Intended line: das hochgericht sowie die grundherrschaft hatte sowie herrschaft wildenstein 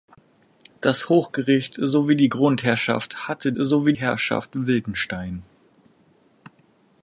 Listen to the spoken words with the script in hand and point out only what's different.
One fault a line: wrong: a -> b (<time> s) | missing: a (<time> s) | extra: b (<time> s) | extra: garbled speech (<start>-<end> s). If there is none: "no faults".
no faults